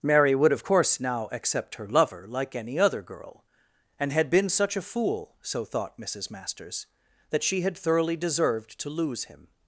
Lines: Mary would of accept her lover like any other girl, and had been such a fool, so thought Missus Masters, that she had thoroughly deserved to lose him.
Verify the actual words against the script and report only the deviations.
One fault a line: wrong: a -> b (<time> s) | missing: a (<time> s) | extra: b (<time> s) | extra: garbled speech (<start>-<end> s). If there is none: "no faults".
extra: course now (0.6 s)